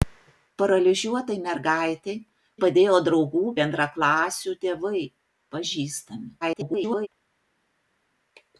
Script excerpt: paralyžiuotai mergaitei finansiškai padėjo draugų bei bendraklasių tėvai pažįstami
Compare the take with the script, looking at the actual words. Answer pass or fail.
fail